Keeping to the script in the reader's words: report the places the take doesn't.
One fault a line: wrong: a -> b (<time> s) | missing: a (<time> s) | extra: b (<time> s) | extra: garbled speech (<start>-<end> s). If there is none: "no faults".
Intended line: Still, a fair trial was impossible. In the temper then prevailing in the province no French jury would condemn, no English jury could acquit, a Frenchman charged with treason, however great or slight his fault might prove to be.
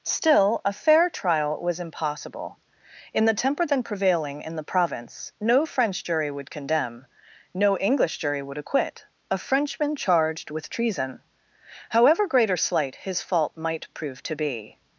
wrong: could -> would (8.4 s)